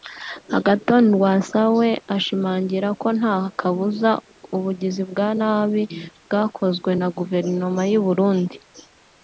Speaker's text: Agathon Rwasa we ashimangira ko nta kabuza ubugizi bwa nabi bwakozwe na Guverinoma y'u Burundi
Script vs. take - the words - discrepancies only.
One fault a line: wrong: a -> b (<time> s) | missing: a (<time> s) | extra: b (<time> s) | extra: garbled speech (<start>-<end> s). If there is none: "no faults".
no faults